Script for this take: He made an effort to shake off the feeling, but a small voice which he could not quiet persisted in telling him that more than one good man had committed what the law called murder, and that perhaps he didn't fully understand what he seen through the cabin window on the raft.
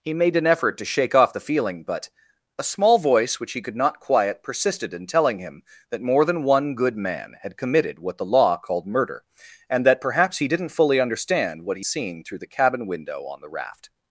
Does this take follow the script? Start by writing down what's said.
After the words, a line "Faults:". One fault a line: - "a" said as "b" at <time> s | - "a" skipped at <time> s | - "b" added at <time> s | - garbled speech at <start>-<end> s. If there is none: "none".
He made an effort to shake off the feeling, but a small voice which he could not quiet persisted in telling him that more than one good man had committed what the law called murder, and that perhaps he didn't fully understand what he seen through the cabin window on the raft.
Faults:
none